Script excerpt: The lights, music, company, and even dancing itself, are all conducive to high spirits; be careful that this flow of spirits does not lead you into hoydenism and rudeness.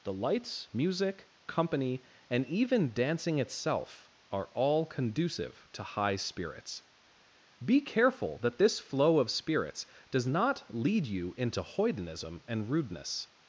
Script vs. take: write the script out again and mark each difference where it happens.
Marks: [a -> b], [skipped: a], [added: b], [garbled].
The lights, music, company, and even dancing itself, are all conducive to high spirits; be careful that this flow of spirits does not lead you into hoydenism and rudeness.